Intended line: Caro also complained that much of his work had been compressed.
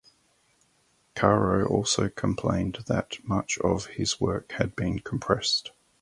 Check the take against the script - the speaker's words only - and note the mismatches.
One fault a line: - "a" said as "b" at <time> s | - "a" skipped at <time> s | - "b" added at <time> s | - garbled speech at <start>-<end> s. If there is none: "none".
none